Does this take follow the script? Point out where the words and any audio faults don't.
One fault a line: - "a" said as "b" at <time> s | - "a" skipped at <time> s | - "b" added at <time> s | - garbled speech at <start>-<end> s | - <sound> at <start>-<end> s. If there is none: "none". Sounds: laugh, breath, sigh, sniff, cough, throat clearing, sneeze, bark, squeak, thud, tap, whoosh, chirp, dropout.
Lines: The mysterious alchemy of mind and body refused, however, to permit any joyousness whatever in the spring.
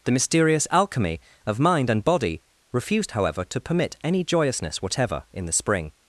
none